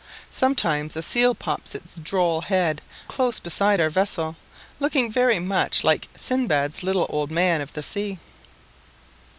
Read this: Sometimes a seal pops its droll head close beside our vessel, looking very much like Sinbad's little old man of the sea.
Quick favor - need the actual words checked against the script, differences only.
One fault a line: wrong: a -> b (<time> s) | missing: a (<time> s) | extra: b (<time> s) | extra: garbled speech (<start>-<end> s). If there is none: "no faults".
no faults